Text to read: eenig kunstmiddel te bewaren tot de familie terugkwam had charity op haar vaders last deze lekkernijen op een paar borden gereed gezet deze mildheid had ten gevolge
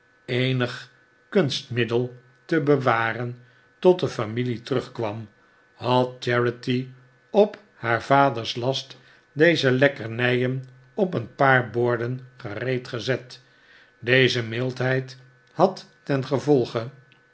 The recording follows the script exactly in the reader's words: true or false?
true